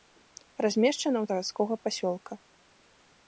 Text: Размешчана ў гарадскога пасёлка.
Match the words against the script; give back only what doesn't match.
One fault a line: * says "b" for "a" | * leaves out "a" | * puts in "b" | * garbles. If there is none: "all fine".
all fine